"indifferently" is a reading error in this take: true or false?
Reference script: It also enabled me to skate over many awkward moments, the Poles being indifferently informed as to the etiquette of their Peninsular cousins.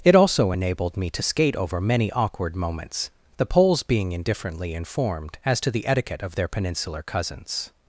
false